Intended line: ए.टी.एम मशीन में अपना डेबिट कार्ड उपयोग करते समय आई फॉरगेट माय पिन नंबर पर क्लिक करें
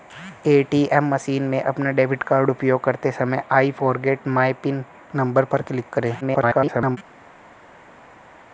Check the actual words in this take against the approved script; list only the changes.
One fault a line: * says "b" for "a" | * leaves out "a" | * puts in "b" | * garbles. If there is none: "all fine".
* garbles